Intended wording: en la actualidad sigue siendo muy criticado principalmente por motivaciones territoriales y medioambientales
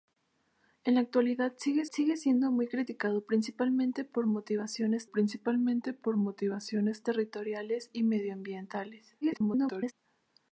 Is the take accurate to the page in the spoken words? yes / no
no